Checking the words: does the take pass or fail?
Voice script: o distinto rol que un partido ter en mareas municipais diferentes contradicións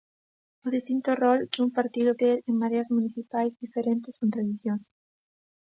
pass